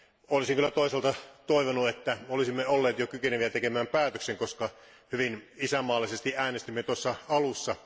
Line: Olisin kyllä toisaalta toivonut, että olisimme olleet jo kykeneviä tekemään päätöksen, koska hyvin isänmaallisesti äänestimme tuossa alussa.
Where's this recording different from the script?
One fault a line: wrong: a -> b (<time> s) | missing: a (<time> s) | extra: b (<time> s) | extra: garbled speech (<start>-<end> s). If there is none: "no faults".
no faults